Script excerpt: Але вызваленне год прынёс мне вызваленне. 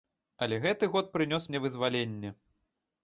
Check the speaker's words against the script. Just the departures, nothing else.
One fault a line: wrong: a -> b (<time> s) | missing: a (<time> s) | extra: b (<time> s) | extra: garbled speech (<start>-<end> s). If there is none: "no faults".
wrong: вызваленне -> гэты (0.6 s)